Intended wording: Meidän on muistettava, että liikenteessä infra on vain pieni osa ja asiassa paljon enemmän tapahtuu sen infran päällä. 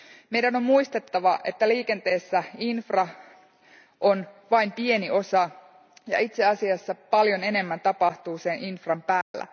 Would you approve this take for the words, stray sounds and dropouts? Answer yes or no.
no